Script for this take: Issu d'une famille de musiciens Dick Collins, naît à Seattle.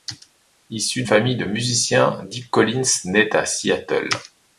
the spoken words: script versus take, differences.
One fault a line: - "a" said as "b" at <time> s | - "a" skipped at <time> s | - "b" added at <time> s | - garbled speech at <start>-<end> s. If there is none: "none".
- "d'une" skipped at 1.0 s